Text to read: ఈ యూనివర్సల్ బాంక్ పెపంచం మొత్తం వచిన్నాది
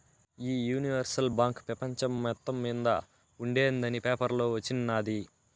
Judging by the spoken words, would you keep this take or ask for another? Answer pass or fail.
fail